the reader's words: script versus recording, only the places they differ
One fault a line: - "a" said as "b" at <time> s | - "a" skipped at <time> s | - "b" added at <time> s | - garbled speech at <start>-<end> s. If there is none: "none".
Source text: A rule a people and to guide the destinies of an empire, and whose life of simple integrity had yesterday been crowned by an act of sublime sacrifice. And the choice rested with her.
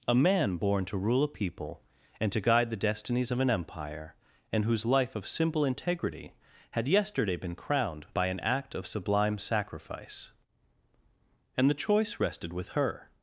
- "man born to" added at 0.1 s